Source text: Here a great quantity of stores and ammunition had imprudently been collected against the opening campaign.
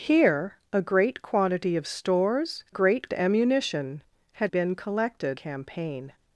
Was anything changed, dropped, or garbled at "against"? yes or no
yes